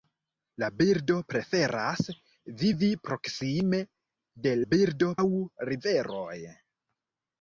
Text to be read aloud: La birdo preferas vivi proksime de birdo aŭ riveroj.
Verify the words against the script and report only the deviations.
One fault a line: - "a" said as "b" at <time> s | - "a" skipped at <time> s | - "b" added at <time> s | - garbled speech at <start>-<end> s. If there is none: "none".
none